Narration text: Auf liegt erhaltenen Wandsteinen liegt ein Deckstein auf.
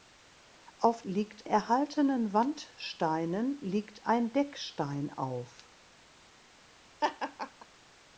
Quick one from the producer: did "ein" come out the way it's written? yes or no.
yes